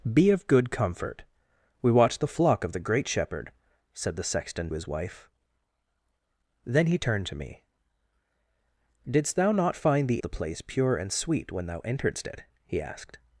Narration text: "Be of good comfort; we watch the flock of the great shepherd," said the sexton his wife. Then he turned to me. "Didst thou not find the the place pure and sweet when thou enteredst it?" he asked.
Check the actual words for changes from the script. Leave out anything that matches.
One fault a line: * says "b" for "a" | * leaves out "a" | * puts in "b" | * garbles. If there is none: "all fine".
all fine